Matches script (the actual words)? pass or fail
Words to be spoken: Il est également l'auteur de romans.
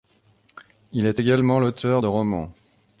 pass